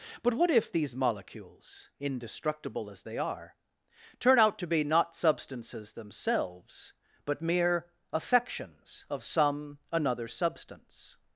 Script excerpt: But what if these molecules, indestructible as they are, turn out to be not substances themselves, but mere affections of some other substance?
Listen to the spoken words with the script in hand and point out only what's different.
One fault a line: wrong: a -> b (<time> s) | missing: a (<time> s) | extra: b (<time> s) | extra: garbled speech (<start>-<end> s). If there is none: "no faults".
wrong: other -> another (9.9 s)